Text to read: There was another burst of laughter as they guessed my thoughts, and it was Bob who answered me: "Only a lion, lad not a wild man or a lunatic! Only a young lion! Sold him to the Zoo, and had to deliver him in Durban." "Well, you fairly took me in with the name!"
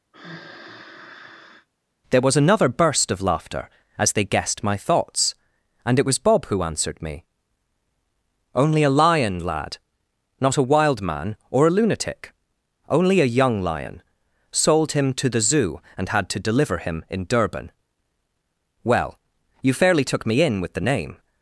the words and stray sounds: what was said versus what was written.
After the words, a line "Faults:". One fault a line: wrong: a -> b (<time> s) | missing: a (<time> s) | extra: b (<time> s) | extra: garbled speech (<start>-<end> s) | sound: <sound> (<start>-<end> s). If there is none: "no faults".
There was another burst of laughter as they guessed my thoughts, and it was Bob who answered me: "Only a lion, lad not a wild man or a lunatic! Only a young lion! Sold him to the Zoo, and had to deliver him in Durban." "Well, you fairly took me in with the name!"
Faults:
sound: sigh (0.1-1.7 s)